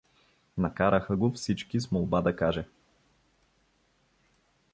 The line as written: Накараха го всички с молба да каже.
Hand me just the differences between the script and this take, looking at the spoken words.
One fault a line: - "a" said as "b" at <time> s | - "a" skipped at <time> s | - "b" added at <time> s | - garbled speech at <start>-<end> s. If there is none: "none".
none